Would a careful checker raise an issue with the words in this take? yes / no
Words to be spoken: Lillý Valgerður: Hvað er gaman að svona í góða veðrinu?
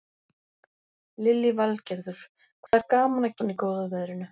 no